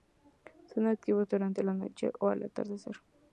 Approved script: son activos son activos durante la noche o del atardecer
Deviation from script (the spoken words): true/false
true